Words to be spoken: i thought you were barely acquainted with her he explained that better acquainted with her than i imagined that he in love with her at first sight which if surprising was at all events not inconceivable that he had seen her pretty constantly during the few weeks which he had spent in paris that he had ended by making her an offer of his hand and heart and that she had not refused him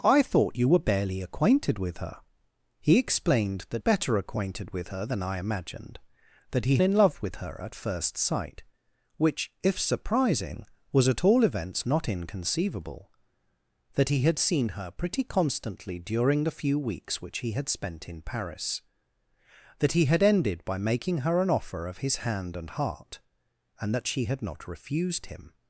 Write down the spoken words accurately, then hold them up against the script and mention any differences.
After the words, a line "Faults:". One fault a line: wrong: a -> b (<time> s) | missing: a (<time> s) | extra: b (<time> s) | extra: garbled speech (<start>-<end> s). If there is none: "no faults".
i thought you were barely acquainted with her he explained that better acquainted with her than i imagined that he in love with her at first sight which if surprising was at all events not inconceivable that he had seen her pretty constantly during the few weeks which he had spent in paris that he had ended by making her an offer of his hand and heart and that she had not refused him
Faults:
no faults